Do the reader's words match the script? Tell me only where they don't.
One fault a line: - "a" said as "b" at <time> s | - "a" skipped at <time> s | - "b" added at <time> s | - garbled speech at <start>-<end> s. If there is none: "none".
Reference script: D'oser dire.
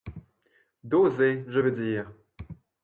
- "je veux" added at 1.5 s